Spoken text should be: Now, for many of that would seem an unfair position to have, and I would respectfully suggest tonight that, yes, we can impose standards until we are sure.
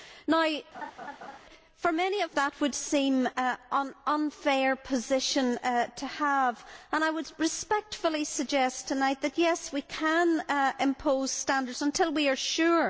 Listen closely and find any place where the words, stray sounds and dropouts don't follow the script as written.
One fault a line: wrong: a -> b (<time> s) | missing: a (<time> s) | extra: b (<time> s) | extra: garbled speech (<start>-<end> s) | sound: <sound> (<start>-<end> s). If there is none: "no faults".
sound: laugh (0.7-1.4 s)